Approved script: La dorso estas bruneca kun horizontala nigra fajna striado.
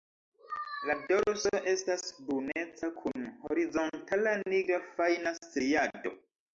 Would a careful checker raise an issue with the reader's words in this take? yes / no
no